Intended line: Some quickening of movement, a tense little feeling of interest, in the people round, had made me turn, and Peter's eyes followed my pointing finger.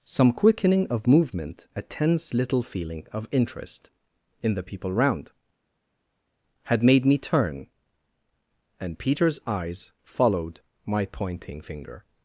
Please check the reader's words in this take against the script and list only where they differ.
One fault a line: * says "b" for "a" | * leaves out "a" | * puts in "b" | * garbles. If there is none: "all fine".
all fine